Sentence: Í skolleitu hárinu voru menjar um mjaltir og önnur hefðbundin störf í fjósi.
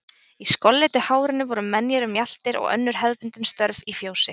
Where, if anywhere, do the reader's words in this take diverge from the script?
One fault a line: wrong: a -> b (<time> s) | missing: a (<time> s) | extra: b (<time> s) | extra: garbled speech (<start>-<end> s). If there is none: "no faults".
no faults